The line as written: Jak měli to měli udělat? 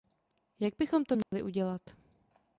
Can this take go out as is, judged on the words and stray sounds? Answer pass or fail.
fail